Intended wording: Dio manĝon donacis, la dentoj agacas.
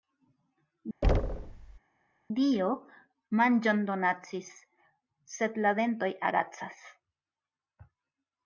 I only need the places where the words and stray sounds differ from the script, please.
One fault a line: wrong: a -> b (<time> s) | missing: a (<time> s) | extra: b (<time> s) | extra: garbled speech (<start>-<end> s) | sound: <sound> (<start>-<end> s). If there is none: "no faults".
sound: thud (1.0-1.8 s)
extra: sed (5.4 s)